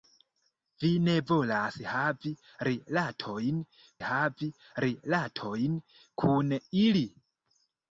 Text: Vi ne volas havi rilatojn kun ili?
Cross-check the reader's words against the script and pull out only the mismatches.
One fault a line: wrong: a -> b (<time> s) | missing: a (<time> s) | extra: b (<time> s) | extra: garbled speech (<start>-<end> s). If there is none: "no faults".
extra: havi rilatojn (4.1 s)